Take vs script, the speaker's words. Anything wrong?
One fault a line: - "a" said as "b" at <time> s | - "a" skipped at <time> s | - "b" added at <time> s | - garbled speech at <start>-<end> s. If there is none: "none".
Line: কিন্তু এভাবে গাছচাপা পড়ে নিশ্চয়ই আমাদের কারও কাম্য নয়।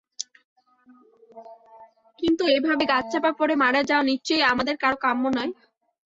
- "মারা যাওয়া" added at 3.6 s